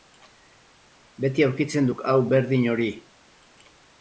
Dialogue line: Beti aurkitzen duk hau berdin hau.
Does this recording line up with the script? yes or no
no